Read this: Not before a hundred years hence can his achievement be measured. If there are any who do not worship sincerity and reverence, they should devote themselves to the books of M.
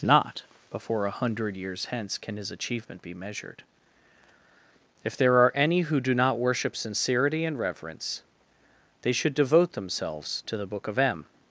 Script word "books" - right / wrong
wrong